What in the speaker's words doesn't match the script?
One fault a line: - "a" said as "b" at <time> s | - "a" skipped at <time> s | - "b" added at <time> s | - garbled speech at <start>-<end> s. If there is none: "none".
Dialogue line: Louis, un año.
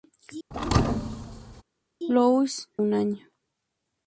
none